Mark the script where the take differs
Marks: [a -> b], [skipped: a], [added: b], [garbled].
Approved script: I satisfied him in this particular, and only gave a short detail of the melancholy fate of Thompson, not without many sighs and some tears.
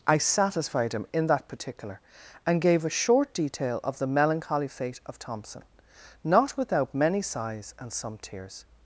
I satisfied him in [this -> that] particular, and [skipped: only] gave a short detail of the melancholy fate of Thompson, not without many sighs and some tears.